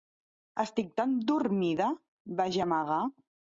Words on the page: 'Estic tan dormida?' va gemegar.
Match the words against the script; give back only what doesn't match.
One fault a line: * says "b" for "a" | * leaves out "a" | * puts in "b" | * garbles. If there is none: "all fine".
all fine